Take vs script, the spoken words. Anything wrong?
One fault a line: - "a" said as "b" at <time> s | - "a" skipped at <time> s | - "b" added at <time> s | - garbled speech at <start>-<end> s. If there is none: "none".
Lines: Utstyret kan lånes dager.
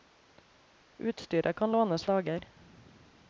none